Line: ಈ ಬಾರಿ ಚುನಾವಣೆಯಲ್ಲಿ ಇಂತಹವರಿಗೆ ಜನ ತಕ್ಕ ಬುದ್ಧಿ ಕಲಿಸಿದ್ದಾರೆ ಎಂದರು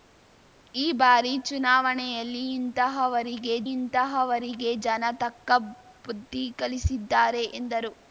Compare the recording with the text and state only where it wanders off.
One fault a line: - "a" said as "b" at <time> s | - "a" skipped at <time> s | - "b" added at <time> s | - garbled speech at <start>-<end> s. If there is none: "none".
- "ಇಂತಹವರಿಗೆ" added at 3.7 s